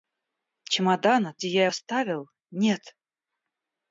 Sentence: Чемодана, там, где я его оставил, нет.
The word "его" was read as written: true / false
false